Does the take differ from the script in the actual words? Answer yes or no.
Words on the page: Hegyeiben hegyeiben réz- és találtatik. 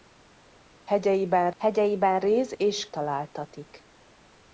no